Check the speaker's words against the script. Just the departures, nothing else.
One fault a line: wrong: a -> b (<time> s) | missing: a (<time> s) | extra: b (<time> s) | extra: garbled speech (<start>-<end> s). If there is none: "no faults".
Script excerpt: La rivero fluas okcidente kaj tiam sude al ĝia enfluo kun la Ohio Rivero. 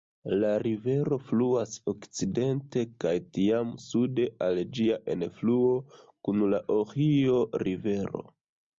no faults